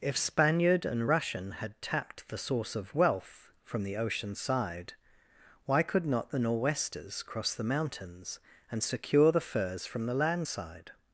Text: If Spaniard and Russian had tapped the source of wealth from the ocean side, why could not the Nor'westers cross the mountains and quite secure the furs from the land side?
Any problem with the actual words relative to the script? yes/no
yes